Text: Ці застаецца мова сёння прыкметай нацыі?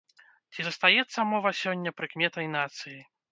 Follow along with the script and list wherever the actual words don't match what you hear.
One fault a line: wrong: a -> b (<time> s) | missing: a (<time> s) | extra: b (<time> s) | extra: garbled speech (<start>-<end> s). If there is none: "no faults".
no faults